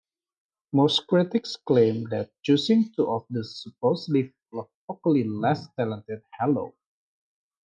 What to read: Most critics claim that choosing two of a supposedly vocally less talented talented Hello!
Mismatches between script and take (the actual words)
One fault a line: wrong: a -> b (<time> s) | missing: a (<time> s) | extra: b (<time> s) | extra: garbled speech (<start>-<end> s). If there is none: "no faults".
wrong: a -> the (3.3 s)
missing: talented (6.2 s)